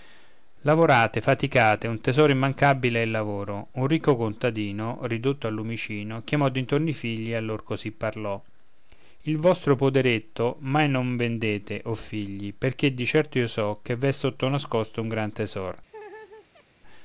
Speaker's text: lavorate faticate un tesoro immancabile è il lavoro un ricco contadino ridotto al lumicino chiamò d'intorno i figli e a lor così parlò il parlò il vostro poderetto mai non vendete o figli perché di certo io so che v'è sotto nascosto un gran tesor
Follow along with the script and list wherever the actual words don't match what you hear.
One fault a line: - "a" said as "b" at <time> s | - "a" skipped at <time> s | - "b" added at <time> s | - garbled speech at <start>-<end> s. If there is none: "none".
- "parlò il" skipped at 9.4 s